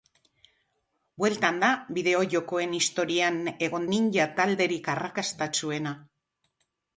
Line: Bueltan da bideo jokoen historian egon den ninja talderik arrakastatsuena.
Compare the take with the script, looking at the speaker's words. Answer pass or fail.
fail